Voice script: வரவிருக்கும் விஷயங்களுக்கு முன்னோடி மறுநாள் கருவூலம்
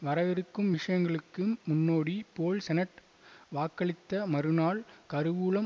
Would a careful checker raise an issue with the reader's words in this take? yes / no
yes